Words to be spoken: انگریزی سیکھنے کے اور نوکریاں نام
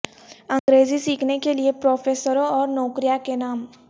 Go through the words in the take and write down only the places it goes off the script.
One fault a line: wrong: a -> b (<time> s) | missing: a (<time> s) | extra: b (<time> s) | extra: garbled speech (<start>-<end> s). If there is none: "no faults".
extra: لئے پروفیسروں (1.5 s)
extra: کے (3.2 s)